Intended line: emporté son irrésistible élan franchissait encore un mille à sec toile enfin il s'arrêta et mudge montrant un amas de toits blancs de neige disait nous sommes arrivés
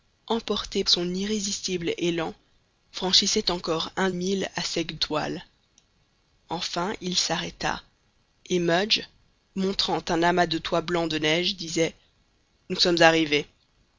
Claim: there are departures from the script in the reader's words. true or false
false